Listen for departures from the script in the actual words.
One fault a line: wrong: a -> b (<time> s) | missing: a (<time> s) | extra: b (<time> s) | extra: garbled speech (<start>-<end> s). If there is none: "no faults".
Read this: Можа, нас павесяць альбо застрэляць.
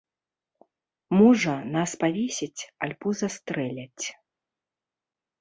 no faults